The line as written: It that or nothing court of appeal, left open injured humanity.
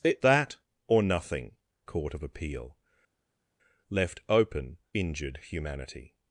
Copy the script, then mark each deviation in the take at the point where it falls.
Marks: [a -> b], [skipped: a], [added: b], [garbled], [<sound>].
It that or nothing court of appeal, left open injured humanity.